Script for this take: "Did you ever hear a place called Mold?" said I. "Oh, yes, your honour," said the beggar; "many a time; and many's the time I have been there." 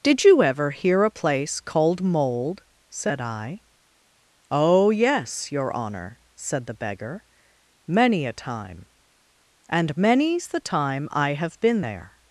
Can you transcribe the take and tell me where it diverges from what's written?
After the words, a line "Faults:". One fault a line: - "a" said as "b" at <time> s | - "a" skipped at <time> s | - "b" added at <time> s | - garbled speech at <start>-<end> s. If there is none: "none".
"Did you ever hear a place called Mold?" said I. "Oh, yes, your honour," said the beggar; "many a time; and many's the time I have been there."
Faults:
none